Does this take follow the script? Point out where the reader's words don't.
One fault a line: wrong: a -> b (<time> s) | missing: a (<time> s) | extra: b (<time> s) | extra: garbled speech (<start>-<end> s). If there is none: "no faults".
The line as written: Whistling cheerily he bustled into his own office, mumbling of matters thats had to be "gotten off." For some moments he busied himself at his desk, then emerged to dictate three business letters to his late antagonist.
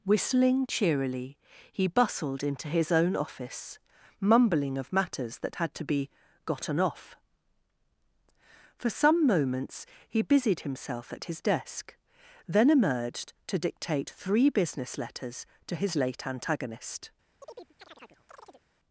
wrong: thats -> that (5.4 s)